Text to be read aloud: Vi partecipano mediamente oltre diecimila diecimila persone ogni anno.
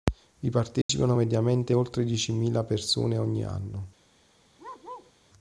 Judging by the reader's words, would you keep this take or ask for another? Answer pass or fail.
fail